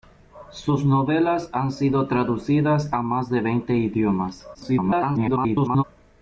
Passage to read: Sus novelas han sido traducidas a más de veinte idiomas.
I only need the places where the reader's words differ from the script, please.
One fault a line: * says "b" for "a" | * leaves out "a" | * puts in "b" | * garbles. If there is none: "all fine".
* garbles